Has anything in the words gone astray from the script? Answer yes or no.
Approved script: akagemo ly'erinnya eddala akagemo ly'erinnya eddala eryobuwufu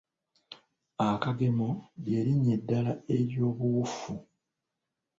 yes